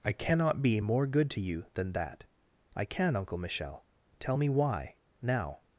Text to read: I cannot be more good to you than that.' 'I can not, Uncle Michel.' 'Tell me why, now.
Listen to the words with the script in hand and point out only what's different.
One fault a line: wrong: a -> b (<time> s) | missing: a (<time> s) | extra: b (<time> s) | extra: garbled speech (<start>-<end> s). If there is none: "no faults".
missing: not (3.1 s)